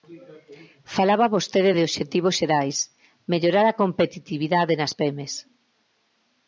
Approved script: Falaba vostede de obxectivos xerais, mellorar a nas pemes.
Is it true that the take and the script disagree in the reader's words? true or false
true